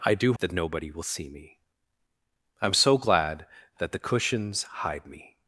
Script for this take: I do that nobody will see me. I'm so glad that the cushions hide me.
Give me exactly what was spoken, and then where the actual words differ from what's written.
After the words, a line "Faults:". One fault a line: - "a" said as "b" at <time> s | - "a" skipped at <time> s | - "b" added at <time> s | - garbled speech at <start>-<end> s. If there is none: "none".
I do that nobody will see me. I'm so glad that the cushions hide me.
Faults:
none